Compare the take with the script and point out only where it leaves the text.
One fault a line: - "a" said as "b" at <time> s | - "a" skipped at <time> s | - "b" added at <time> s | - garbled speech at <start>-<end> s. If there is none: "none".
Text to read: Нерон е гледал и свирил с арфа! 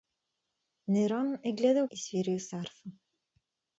none